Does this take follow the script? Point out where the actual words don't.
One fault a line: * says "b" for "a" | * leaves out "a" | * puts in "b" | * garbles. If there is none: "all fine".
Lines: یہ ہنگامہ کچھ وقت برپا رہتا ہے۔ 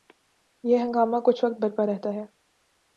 all fine